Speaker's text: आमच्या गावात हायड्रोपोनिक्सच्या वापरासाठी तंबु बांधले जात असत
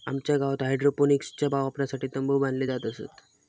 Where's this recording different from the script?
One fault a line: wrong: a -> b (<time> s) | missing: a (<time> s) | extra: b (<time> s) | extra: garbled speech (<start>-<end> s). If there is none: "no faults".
no faults